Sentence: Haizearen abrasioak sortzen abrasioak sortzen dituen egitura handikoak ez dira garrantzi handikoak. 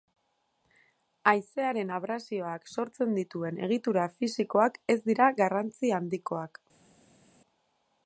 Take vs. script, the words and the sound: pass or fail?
fail